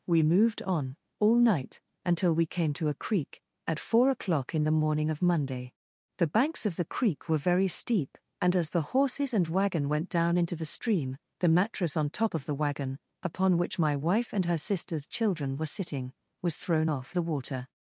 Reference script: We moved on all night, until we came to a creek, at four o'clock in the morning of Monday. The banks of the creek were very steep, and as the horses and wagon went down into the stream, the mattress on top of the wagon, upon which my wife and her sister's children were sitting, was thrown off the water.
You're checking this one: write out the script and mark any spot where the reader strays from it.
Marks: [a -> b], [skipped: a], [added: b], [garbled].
We moved on all night, until we came to a creek, at four o'clock in the morning of Monday. The banks of the creek were very steep, and as the horses and wagon went down into the stream, the mattress on top of the wagon, upon which my wife and her sister's children were sitting, was thrown off the water.